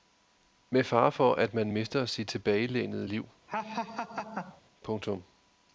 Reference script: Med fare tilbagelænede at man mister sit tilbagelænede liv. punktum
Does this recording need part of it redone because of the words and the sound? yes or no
yes